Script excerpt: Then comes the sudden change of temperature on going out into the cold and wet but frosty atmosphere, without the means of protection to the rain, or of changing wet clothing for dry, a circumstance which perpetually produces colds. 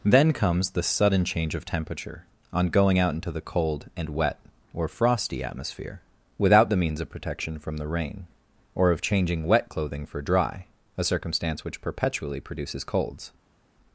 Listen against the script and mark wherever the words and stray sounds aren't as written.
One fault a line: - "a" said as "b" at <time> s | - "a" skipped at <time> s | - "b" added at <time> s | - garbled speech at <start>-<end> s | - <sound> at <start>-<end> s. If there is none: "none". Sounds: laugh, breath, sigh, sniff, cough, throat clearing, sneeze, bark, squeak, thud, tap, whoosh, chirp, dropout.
- "but" said as "or" at 4.7 s
- "to" said as "from" at 7.6 s